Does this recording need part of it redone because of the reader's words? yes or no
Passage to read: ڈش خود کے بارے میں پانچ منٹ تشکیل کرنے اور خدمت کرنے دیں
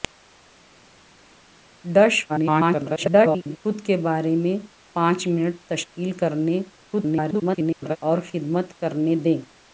yes